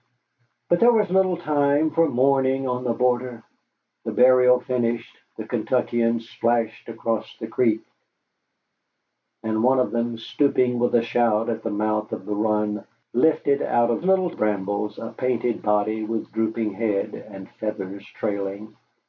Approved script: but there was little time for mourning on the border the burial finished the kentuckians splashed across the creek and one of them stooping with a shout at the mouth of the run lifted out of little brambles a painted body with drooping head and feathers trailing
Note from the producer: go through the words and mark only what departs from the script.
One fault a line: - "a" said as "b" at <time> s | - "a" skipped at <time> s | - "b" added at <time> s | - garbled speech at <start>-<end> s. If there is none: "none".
none